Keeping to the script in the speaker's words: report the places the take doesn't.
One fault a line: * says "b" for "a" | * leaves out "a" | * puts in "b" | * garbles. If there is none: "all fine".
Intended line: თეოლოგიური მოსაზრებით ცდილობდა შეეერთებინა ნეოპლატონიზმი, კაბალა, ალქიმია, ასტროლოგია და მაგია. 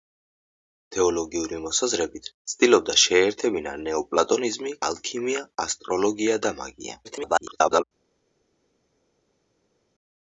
* leaves out "კაბალა"
* garbles